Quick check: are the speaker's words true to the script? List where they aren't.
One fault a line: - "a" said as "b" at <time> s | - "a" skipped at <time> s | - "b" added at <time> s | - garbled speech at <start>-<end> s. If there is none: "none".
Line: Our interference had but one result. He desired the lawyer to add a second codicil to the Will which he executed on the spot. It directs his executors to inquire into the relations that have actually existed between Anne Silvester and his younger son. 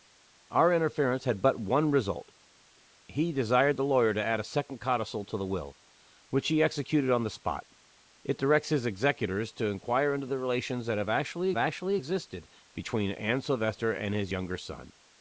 - "actually" added at 11.5 s